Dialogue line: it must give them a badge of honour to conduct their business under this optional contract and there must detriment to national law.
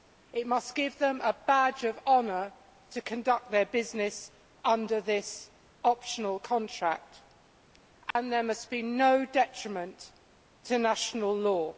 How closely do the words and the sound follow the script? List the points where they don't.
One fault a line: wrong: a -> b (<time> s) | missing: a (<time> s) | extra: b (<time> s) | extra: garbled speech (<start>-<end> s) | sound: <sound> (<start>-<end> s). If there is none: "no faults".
sound: dropout (8.1-8.2 s)
extra: be no (8.7 s)